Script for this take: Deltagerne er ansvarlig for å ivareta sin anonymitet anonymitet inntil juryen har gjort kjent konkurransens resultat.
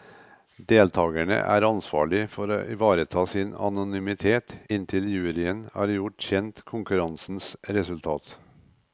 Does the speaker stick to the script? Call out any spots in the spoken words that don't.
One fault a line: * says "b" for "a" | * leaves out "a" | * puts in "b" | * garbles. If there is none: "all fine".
* leaves out "anonymitet"